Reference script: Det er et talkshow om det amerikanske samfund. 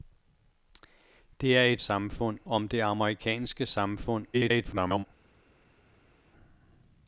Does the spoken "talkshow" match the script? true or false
false